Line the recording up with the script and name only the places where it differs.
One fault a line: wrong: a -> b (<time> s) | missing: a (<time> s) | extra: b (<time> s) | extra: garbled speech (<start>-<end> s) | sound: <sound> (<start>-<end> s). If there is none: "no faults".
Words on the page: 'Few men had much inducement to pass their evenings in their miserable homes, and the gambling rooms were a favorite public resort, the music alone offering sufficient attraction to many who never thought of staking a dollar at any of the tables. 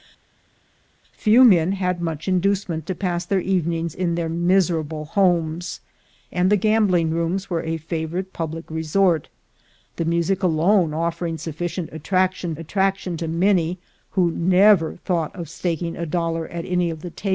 extra: attraction (12.6 s)